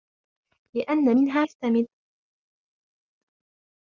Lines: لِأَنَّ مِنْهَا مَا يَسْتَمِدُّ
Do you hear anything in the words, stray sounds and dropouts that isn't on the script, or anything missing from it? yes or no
yes